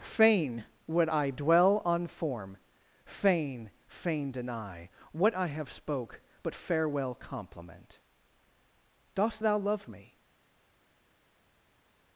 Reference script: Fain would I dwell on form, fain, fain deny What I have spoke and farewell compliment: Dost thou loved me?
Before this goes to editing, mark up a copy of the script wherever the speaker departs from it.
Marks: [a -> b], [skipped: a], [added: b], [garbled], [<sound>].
Fain would I dwell on form, fain, fain deny What I have spoke [and -> but] farewell compliment: Dost thou [loved -> love] me?